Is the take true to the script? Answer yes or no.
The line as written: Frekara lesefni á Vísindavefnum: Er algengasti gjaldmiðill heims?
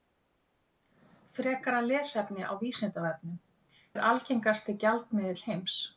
yes